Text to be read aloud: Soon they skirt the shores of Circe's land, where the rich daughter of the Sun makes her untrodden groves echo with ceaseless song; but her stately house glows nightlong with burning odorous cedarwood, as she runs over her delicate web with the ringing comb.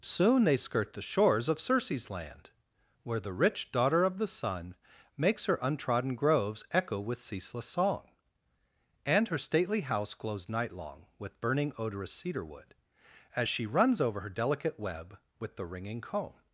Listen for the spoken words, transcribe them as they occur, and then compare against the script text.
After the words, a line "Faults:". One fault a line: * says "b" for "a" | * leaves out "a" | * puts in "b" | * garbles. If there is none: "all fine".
Soon they skirt the shores of Circe's land, where the rich daughter of the Sun makes her untrodden groves echo with ceaseless song; and her stately house glows nightlong with burning odorous cedarwood, as she runs over her delicate web with the ringing comb.
Faults:
* says "and" for "but"